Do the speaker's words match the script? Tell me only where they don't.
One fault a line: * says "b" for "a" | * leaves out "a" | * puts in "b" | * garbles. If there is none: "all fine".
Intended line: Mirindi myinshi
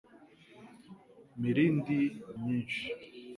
all fine